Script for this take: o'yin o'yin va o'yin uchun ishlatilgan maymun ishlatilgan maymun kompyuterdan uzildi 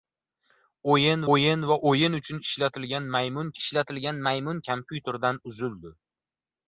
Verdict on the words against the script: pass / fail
pass